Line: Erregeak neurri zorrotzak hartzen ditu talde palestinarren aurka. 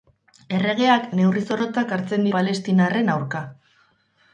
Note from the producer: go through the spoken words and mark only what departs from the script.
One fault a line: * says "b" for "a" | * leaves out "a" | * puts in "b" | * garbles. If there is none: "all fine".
* leaves out "ditu talde"